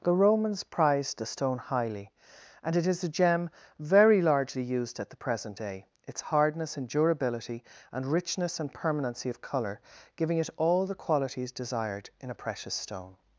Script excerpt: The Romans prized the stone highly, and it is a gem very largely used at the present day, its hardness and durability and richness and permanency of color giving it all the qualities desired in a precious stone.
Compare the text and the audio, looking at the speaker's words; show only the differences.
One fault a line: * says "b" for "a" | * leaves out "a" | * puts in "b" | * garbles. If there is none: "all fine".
all fine